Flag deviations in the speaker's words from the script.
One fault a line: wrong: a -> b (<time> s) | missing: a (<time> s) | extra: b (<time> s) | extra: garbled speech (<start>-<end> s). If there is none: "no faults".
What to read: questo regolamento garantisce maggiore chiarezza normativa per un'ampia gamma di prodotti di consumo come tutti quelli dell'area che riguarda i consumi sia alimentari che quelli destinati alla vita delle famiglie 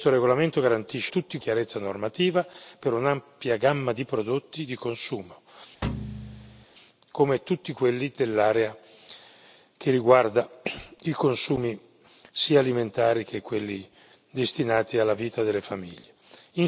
wrong: maggiore -> tutti (1.1 s)